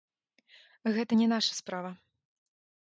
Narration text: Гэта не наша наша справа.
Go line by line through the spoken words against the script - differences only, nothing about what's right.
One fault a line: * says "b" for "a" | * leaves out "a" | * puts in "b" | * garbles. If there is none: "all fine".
* leaves out "наша"